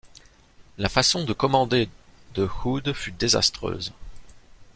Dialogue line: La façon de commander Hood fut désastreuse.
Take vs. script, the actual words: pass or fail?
fail